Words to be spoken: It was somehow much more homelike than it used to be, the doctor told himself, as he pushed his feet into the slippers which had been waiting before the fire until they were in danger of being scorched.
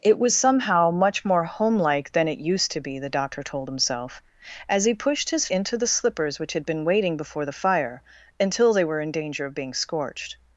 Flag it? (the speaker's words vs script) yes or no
yes